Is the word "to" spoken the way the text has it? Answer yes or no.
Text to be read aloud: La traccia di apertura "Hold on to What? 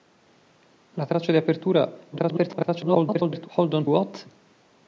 no